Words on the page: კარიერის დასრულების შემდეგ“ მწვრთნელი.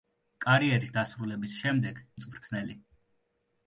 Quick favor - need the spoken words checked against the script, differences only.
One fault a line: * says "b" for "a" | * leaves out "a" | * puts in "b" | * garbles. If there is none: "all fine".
all fine